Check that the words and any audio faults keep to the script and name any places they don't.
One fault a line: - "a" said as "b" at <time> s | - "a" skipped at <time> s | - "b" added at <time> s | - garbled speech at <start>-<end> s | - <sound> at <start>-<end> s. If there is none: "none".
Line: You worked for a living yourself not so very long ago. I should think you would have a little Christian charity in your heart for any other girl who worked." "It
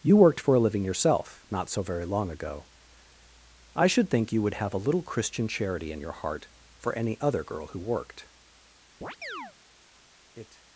- chirp at 9.0-9.5 s